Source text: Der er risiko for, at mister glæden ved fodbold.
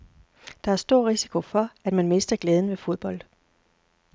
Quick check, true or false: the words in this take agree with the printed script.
false